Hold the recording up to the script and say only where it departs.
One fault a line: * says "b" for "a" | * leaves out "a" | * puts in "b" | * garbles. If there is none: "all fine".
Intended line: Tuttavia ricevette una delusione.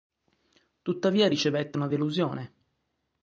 all fine